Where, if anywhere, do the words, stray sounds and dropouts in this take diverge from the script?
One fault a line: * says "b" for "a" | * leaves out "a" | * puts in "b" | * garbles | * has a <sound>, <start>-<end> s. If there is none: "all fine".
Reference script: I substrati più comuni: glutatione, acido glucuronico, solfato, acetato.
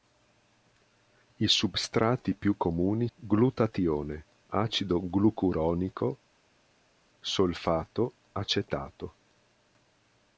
all fine